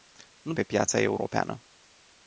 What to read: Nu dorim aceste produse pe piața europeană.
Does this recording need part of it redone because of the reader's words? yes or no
yes